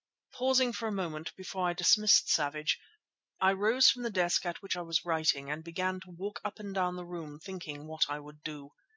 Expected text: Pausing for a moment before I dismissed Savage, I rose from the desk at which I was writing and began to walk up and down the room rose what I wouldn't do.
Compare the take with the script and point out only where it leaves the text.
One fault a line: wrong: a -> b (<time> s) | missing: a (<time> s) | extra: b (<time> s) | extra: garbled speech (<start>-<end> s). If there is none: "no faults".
wrong: rose -> thinking (7.4 s)
wrong: wouldn't -> would (8.2 s)